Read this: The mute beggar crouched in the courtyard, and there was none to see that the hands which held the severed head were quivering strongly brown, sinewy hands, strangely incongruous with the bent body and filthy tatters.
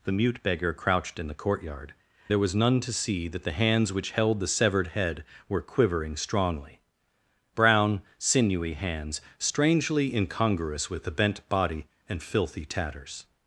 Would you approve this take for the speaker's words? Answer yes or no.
no